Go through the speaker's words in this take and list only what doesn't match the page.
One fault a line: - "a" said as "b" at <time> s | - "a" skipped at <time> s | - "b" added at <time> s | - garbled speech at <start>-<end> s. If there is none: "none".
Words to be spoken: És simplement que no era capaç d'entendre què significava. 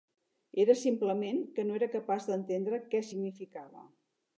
- "És" said as "Era" at 0.6 s